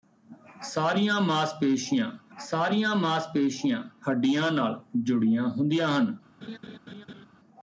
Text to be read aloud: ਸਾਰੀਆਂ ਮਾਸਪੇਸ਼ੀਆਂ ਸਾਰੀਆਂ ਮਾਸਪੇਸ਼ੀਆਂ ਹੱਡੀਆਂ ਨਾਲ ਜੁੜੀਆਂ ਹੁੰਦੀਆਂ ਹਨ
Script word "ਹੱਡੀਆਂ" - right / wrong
right